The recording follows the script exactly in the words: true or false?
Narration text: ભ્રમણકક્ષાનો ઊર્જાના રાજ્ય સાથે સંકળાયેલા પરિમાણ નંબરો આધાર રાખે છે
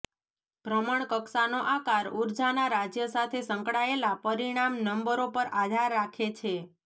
false